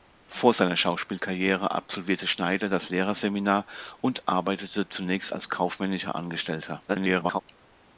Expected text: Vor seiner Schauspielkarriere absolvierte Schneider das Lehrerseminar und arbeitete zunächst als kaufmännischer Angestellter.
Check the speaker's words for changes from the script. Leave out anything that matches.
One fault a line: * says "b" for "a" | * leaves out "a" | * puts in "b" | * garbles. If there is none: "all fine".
* garbles